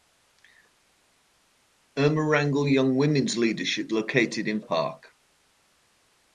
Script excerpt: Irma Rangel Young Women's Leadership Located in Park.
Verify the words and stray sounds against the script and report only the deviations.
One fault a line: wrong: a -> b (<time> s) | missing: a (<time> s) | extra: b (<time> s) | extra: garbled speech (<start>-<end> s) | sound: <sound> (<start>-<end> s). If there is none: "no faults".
no faults